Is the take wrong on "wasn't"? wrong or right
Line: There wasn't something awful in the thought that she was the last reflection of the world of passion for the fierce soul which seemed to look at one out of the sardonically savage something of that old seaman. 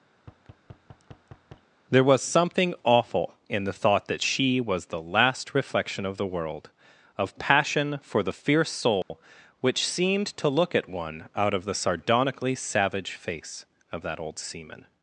wrong